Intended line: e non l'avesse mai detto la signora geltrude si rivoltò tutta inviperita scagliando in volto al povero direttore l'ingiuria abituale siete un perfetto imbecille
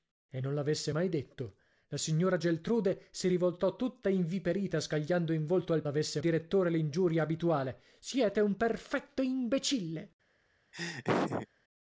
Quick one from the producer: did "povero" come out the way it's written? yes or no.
no